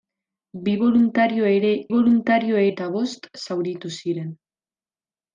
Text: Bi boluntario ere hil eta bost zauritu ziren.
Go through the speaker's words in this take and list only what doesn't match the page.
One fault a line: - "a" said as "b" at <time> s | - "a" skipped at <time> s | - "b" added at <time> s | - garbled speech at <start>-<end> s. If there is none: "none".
- "hil" said as "boluntario" at 1.9 s